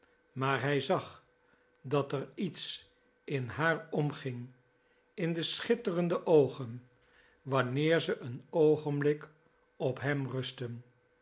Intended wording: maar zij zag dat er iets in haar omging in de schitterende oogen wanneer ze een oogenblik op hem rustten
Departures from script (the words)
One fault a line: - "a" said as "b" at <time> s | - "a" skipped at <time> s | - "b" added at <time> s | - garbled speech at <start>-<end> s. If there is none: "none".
- "zij" said as "hij" at 0.6 s